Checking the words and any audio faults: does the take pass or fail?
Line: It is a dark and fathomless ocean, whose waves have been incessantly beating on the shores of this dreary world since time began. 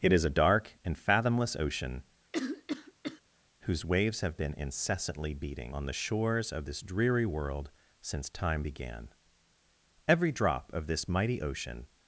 fail